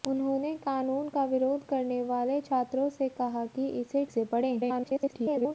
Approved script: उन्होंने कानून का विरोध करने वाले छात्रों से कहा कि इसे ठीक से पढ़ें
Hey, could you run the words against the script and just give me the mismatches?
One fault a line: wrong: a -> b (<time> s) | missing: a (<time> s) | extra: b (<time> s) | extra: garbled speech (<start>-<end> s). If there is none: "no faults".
missing: ठीक (4.0 s)
extra: garbled speech (4.6-5.5 s)